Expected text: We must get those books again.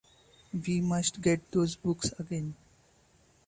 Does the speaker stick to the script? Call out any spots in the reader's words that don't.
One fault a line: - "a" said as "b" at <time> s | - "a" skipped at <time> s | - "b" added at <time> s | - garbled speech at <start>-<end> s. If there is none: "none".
none